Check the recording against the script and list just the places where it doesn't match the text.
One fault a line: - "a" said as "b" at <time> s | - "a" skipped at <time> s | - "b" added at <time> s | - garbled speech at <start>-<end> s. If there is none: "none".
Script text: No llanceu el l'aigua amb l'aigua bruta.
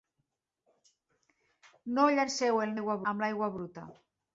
none